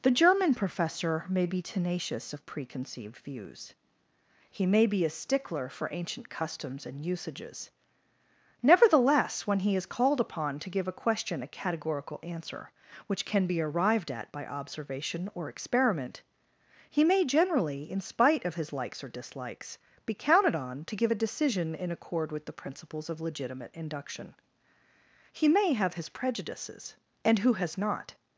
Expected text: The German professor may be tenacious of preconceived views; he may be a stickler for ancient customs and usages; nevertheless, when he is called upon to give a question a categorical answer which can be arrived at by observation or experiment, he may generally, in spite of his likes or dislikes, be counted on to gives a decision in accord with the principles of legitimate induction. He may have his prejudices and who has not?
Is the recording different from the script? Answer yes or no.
yes